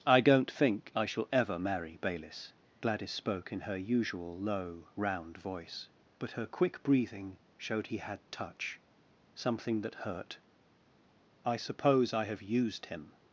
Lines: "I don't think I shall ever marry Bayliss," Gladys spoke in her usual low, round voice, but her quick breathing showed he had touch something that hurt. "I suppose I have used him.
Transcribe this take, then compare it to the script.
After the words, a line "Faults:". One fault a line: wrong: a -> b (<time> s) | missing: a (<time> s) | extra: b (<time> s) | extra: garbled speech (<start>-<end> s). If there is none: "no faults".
"I don't think I shall ever marry Bayliss," Gladys spoke in her usual low, round voice, but her quick breathing showed he had touch something that hurt. "I suppose I have used him.
Faults:
no faults